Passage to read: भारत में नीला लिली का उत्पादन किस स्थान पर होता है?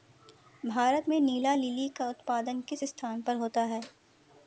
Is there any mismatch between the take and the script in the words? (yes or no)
no